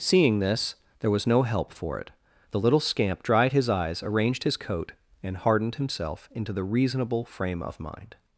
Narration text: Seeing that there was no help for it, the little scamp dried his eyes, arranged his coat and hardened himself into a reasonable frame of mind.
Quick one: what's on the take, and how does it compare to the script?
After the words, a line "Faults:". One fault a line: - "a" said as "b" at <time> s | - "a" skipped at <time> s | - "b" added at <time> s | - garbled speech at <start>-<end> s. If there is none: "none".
Seeing this there was no help for it, the little scamp dried his eyes, arranged his coat and hardened himself into the reasonable frame of mind.
Faults:
- "that" said as "this" at 0.4 s
- "a" said as "the" at 6.5 s